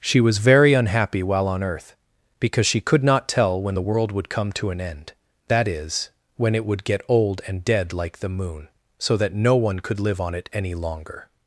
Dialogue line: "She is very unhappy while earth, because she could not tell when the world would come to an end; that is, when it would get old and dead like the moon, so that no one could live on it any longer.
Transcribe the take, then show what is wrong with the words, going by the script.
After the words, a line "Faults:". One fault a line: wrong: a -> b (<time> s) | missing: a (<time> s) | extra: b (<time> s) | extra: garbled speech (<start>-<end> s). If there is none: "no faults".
"She was very unhappy while on earth, because she could not tell when the world would come to an end; that is, when it would get old and dead like the moon, so that no one could live on it any longer.
Faults:
wrong: is -> was (0.2 s)
extra: on (1.5 s)